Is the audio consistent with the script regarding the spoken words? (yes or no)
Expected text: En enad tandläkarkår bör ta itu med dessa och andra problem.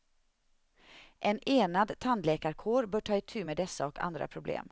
yes